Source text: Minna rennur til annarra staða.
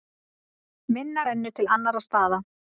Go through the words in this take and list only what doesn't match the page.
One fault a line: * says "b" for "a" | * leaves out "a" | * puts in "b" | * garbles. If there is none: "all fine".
all fine